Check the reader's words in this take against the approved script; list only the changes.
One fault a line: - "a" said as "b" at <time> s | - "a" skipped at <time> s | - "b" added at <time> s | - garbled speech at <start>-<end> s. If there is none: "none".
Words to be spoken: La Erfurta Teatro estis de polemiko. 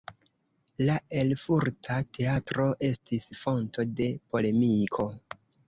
- "fonto" added at 3.5 s